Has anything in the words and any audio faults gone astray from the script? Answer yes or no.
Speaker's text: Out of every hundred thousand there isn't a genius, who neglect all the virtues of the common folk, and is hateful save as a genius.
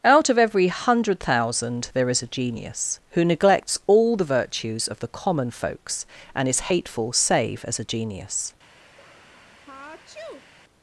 yes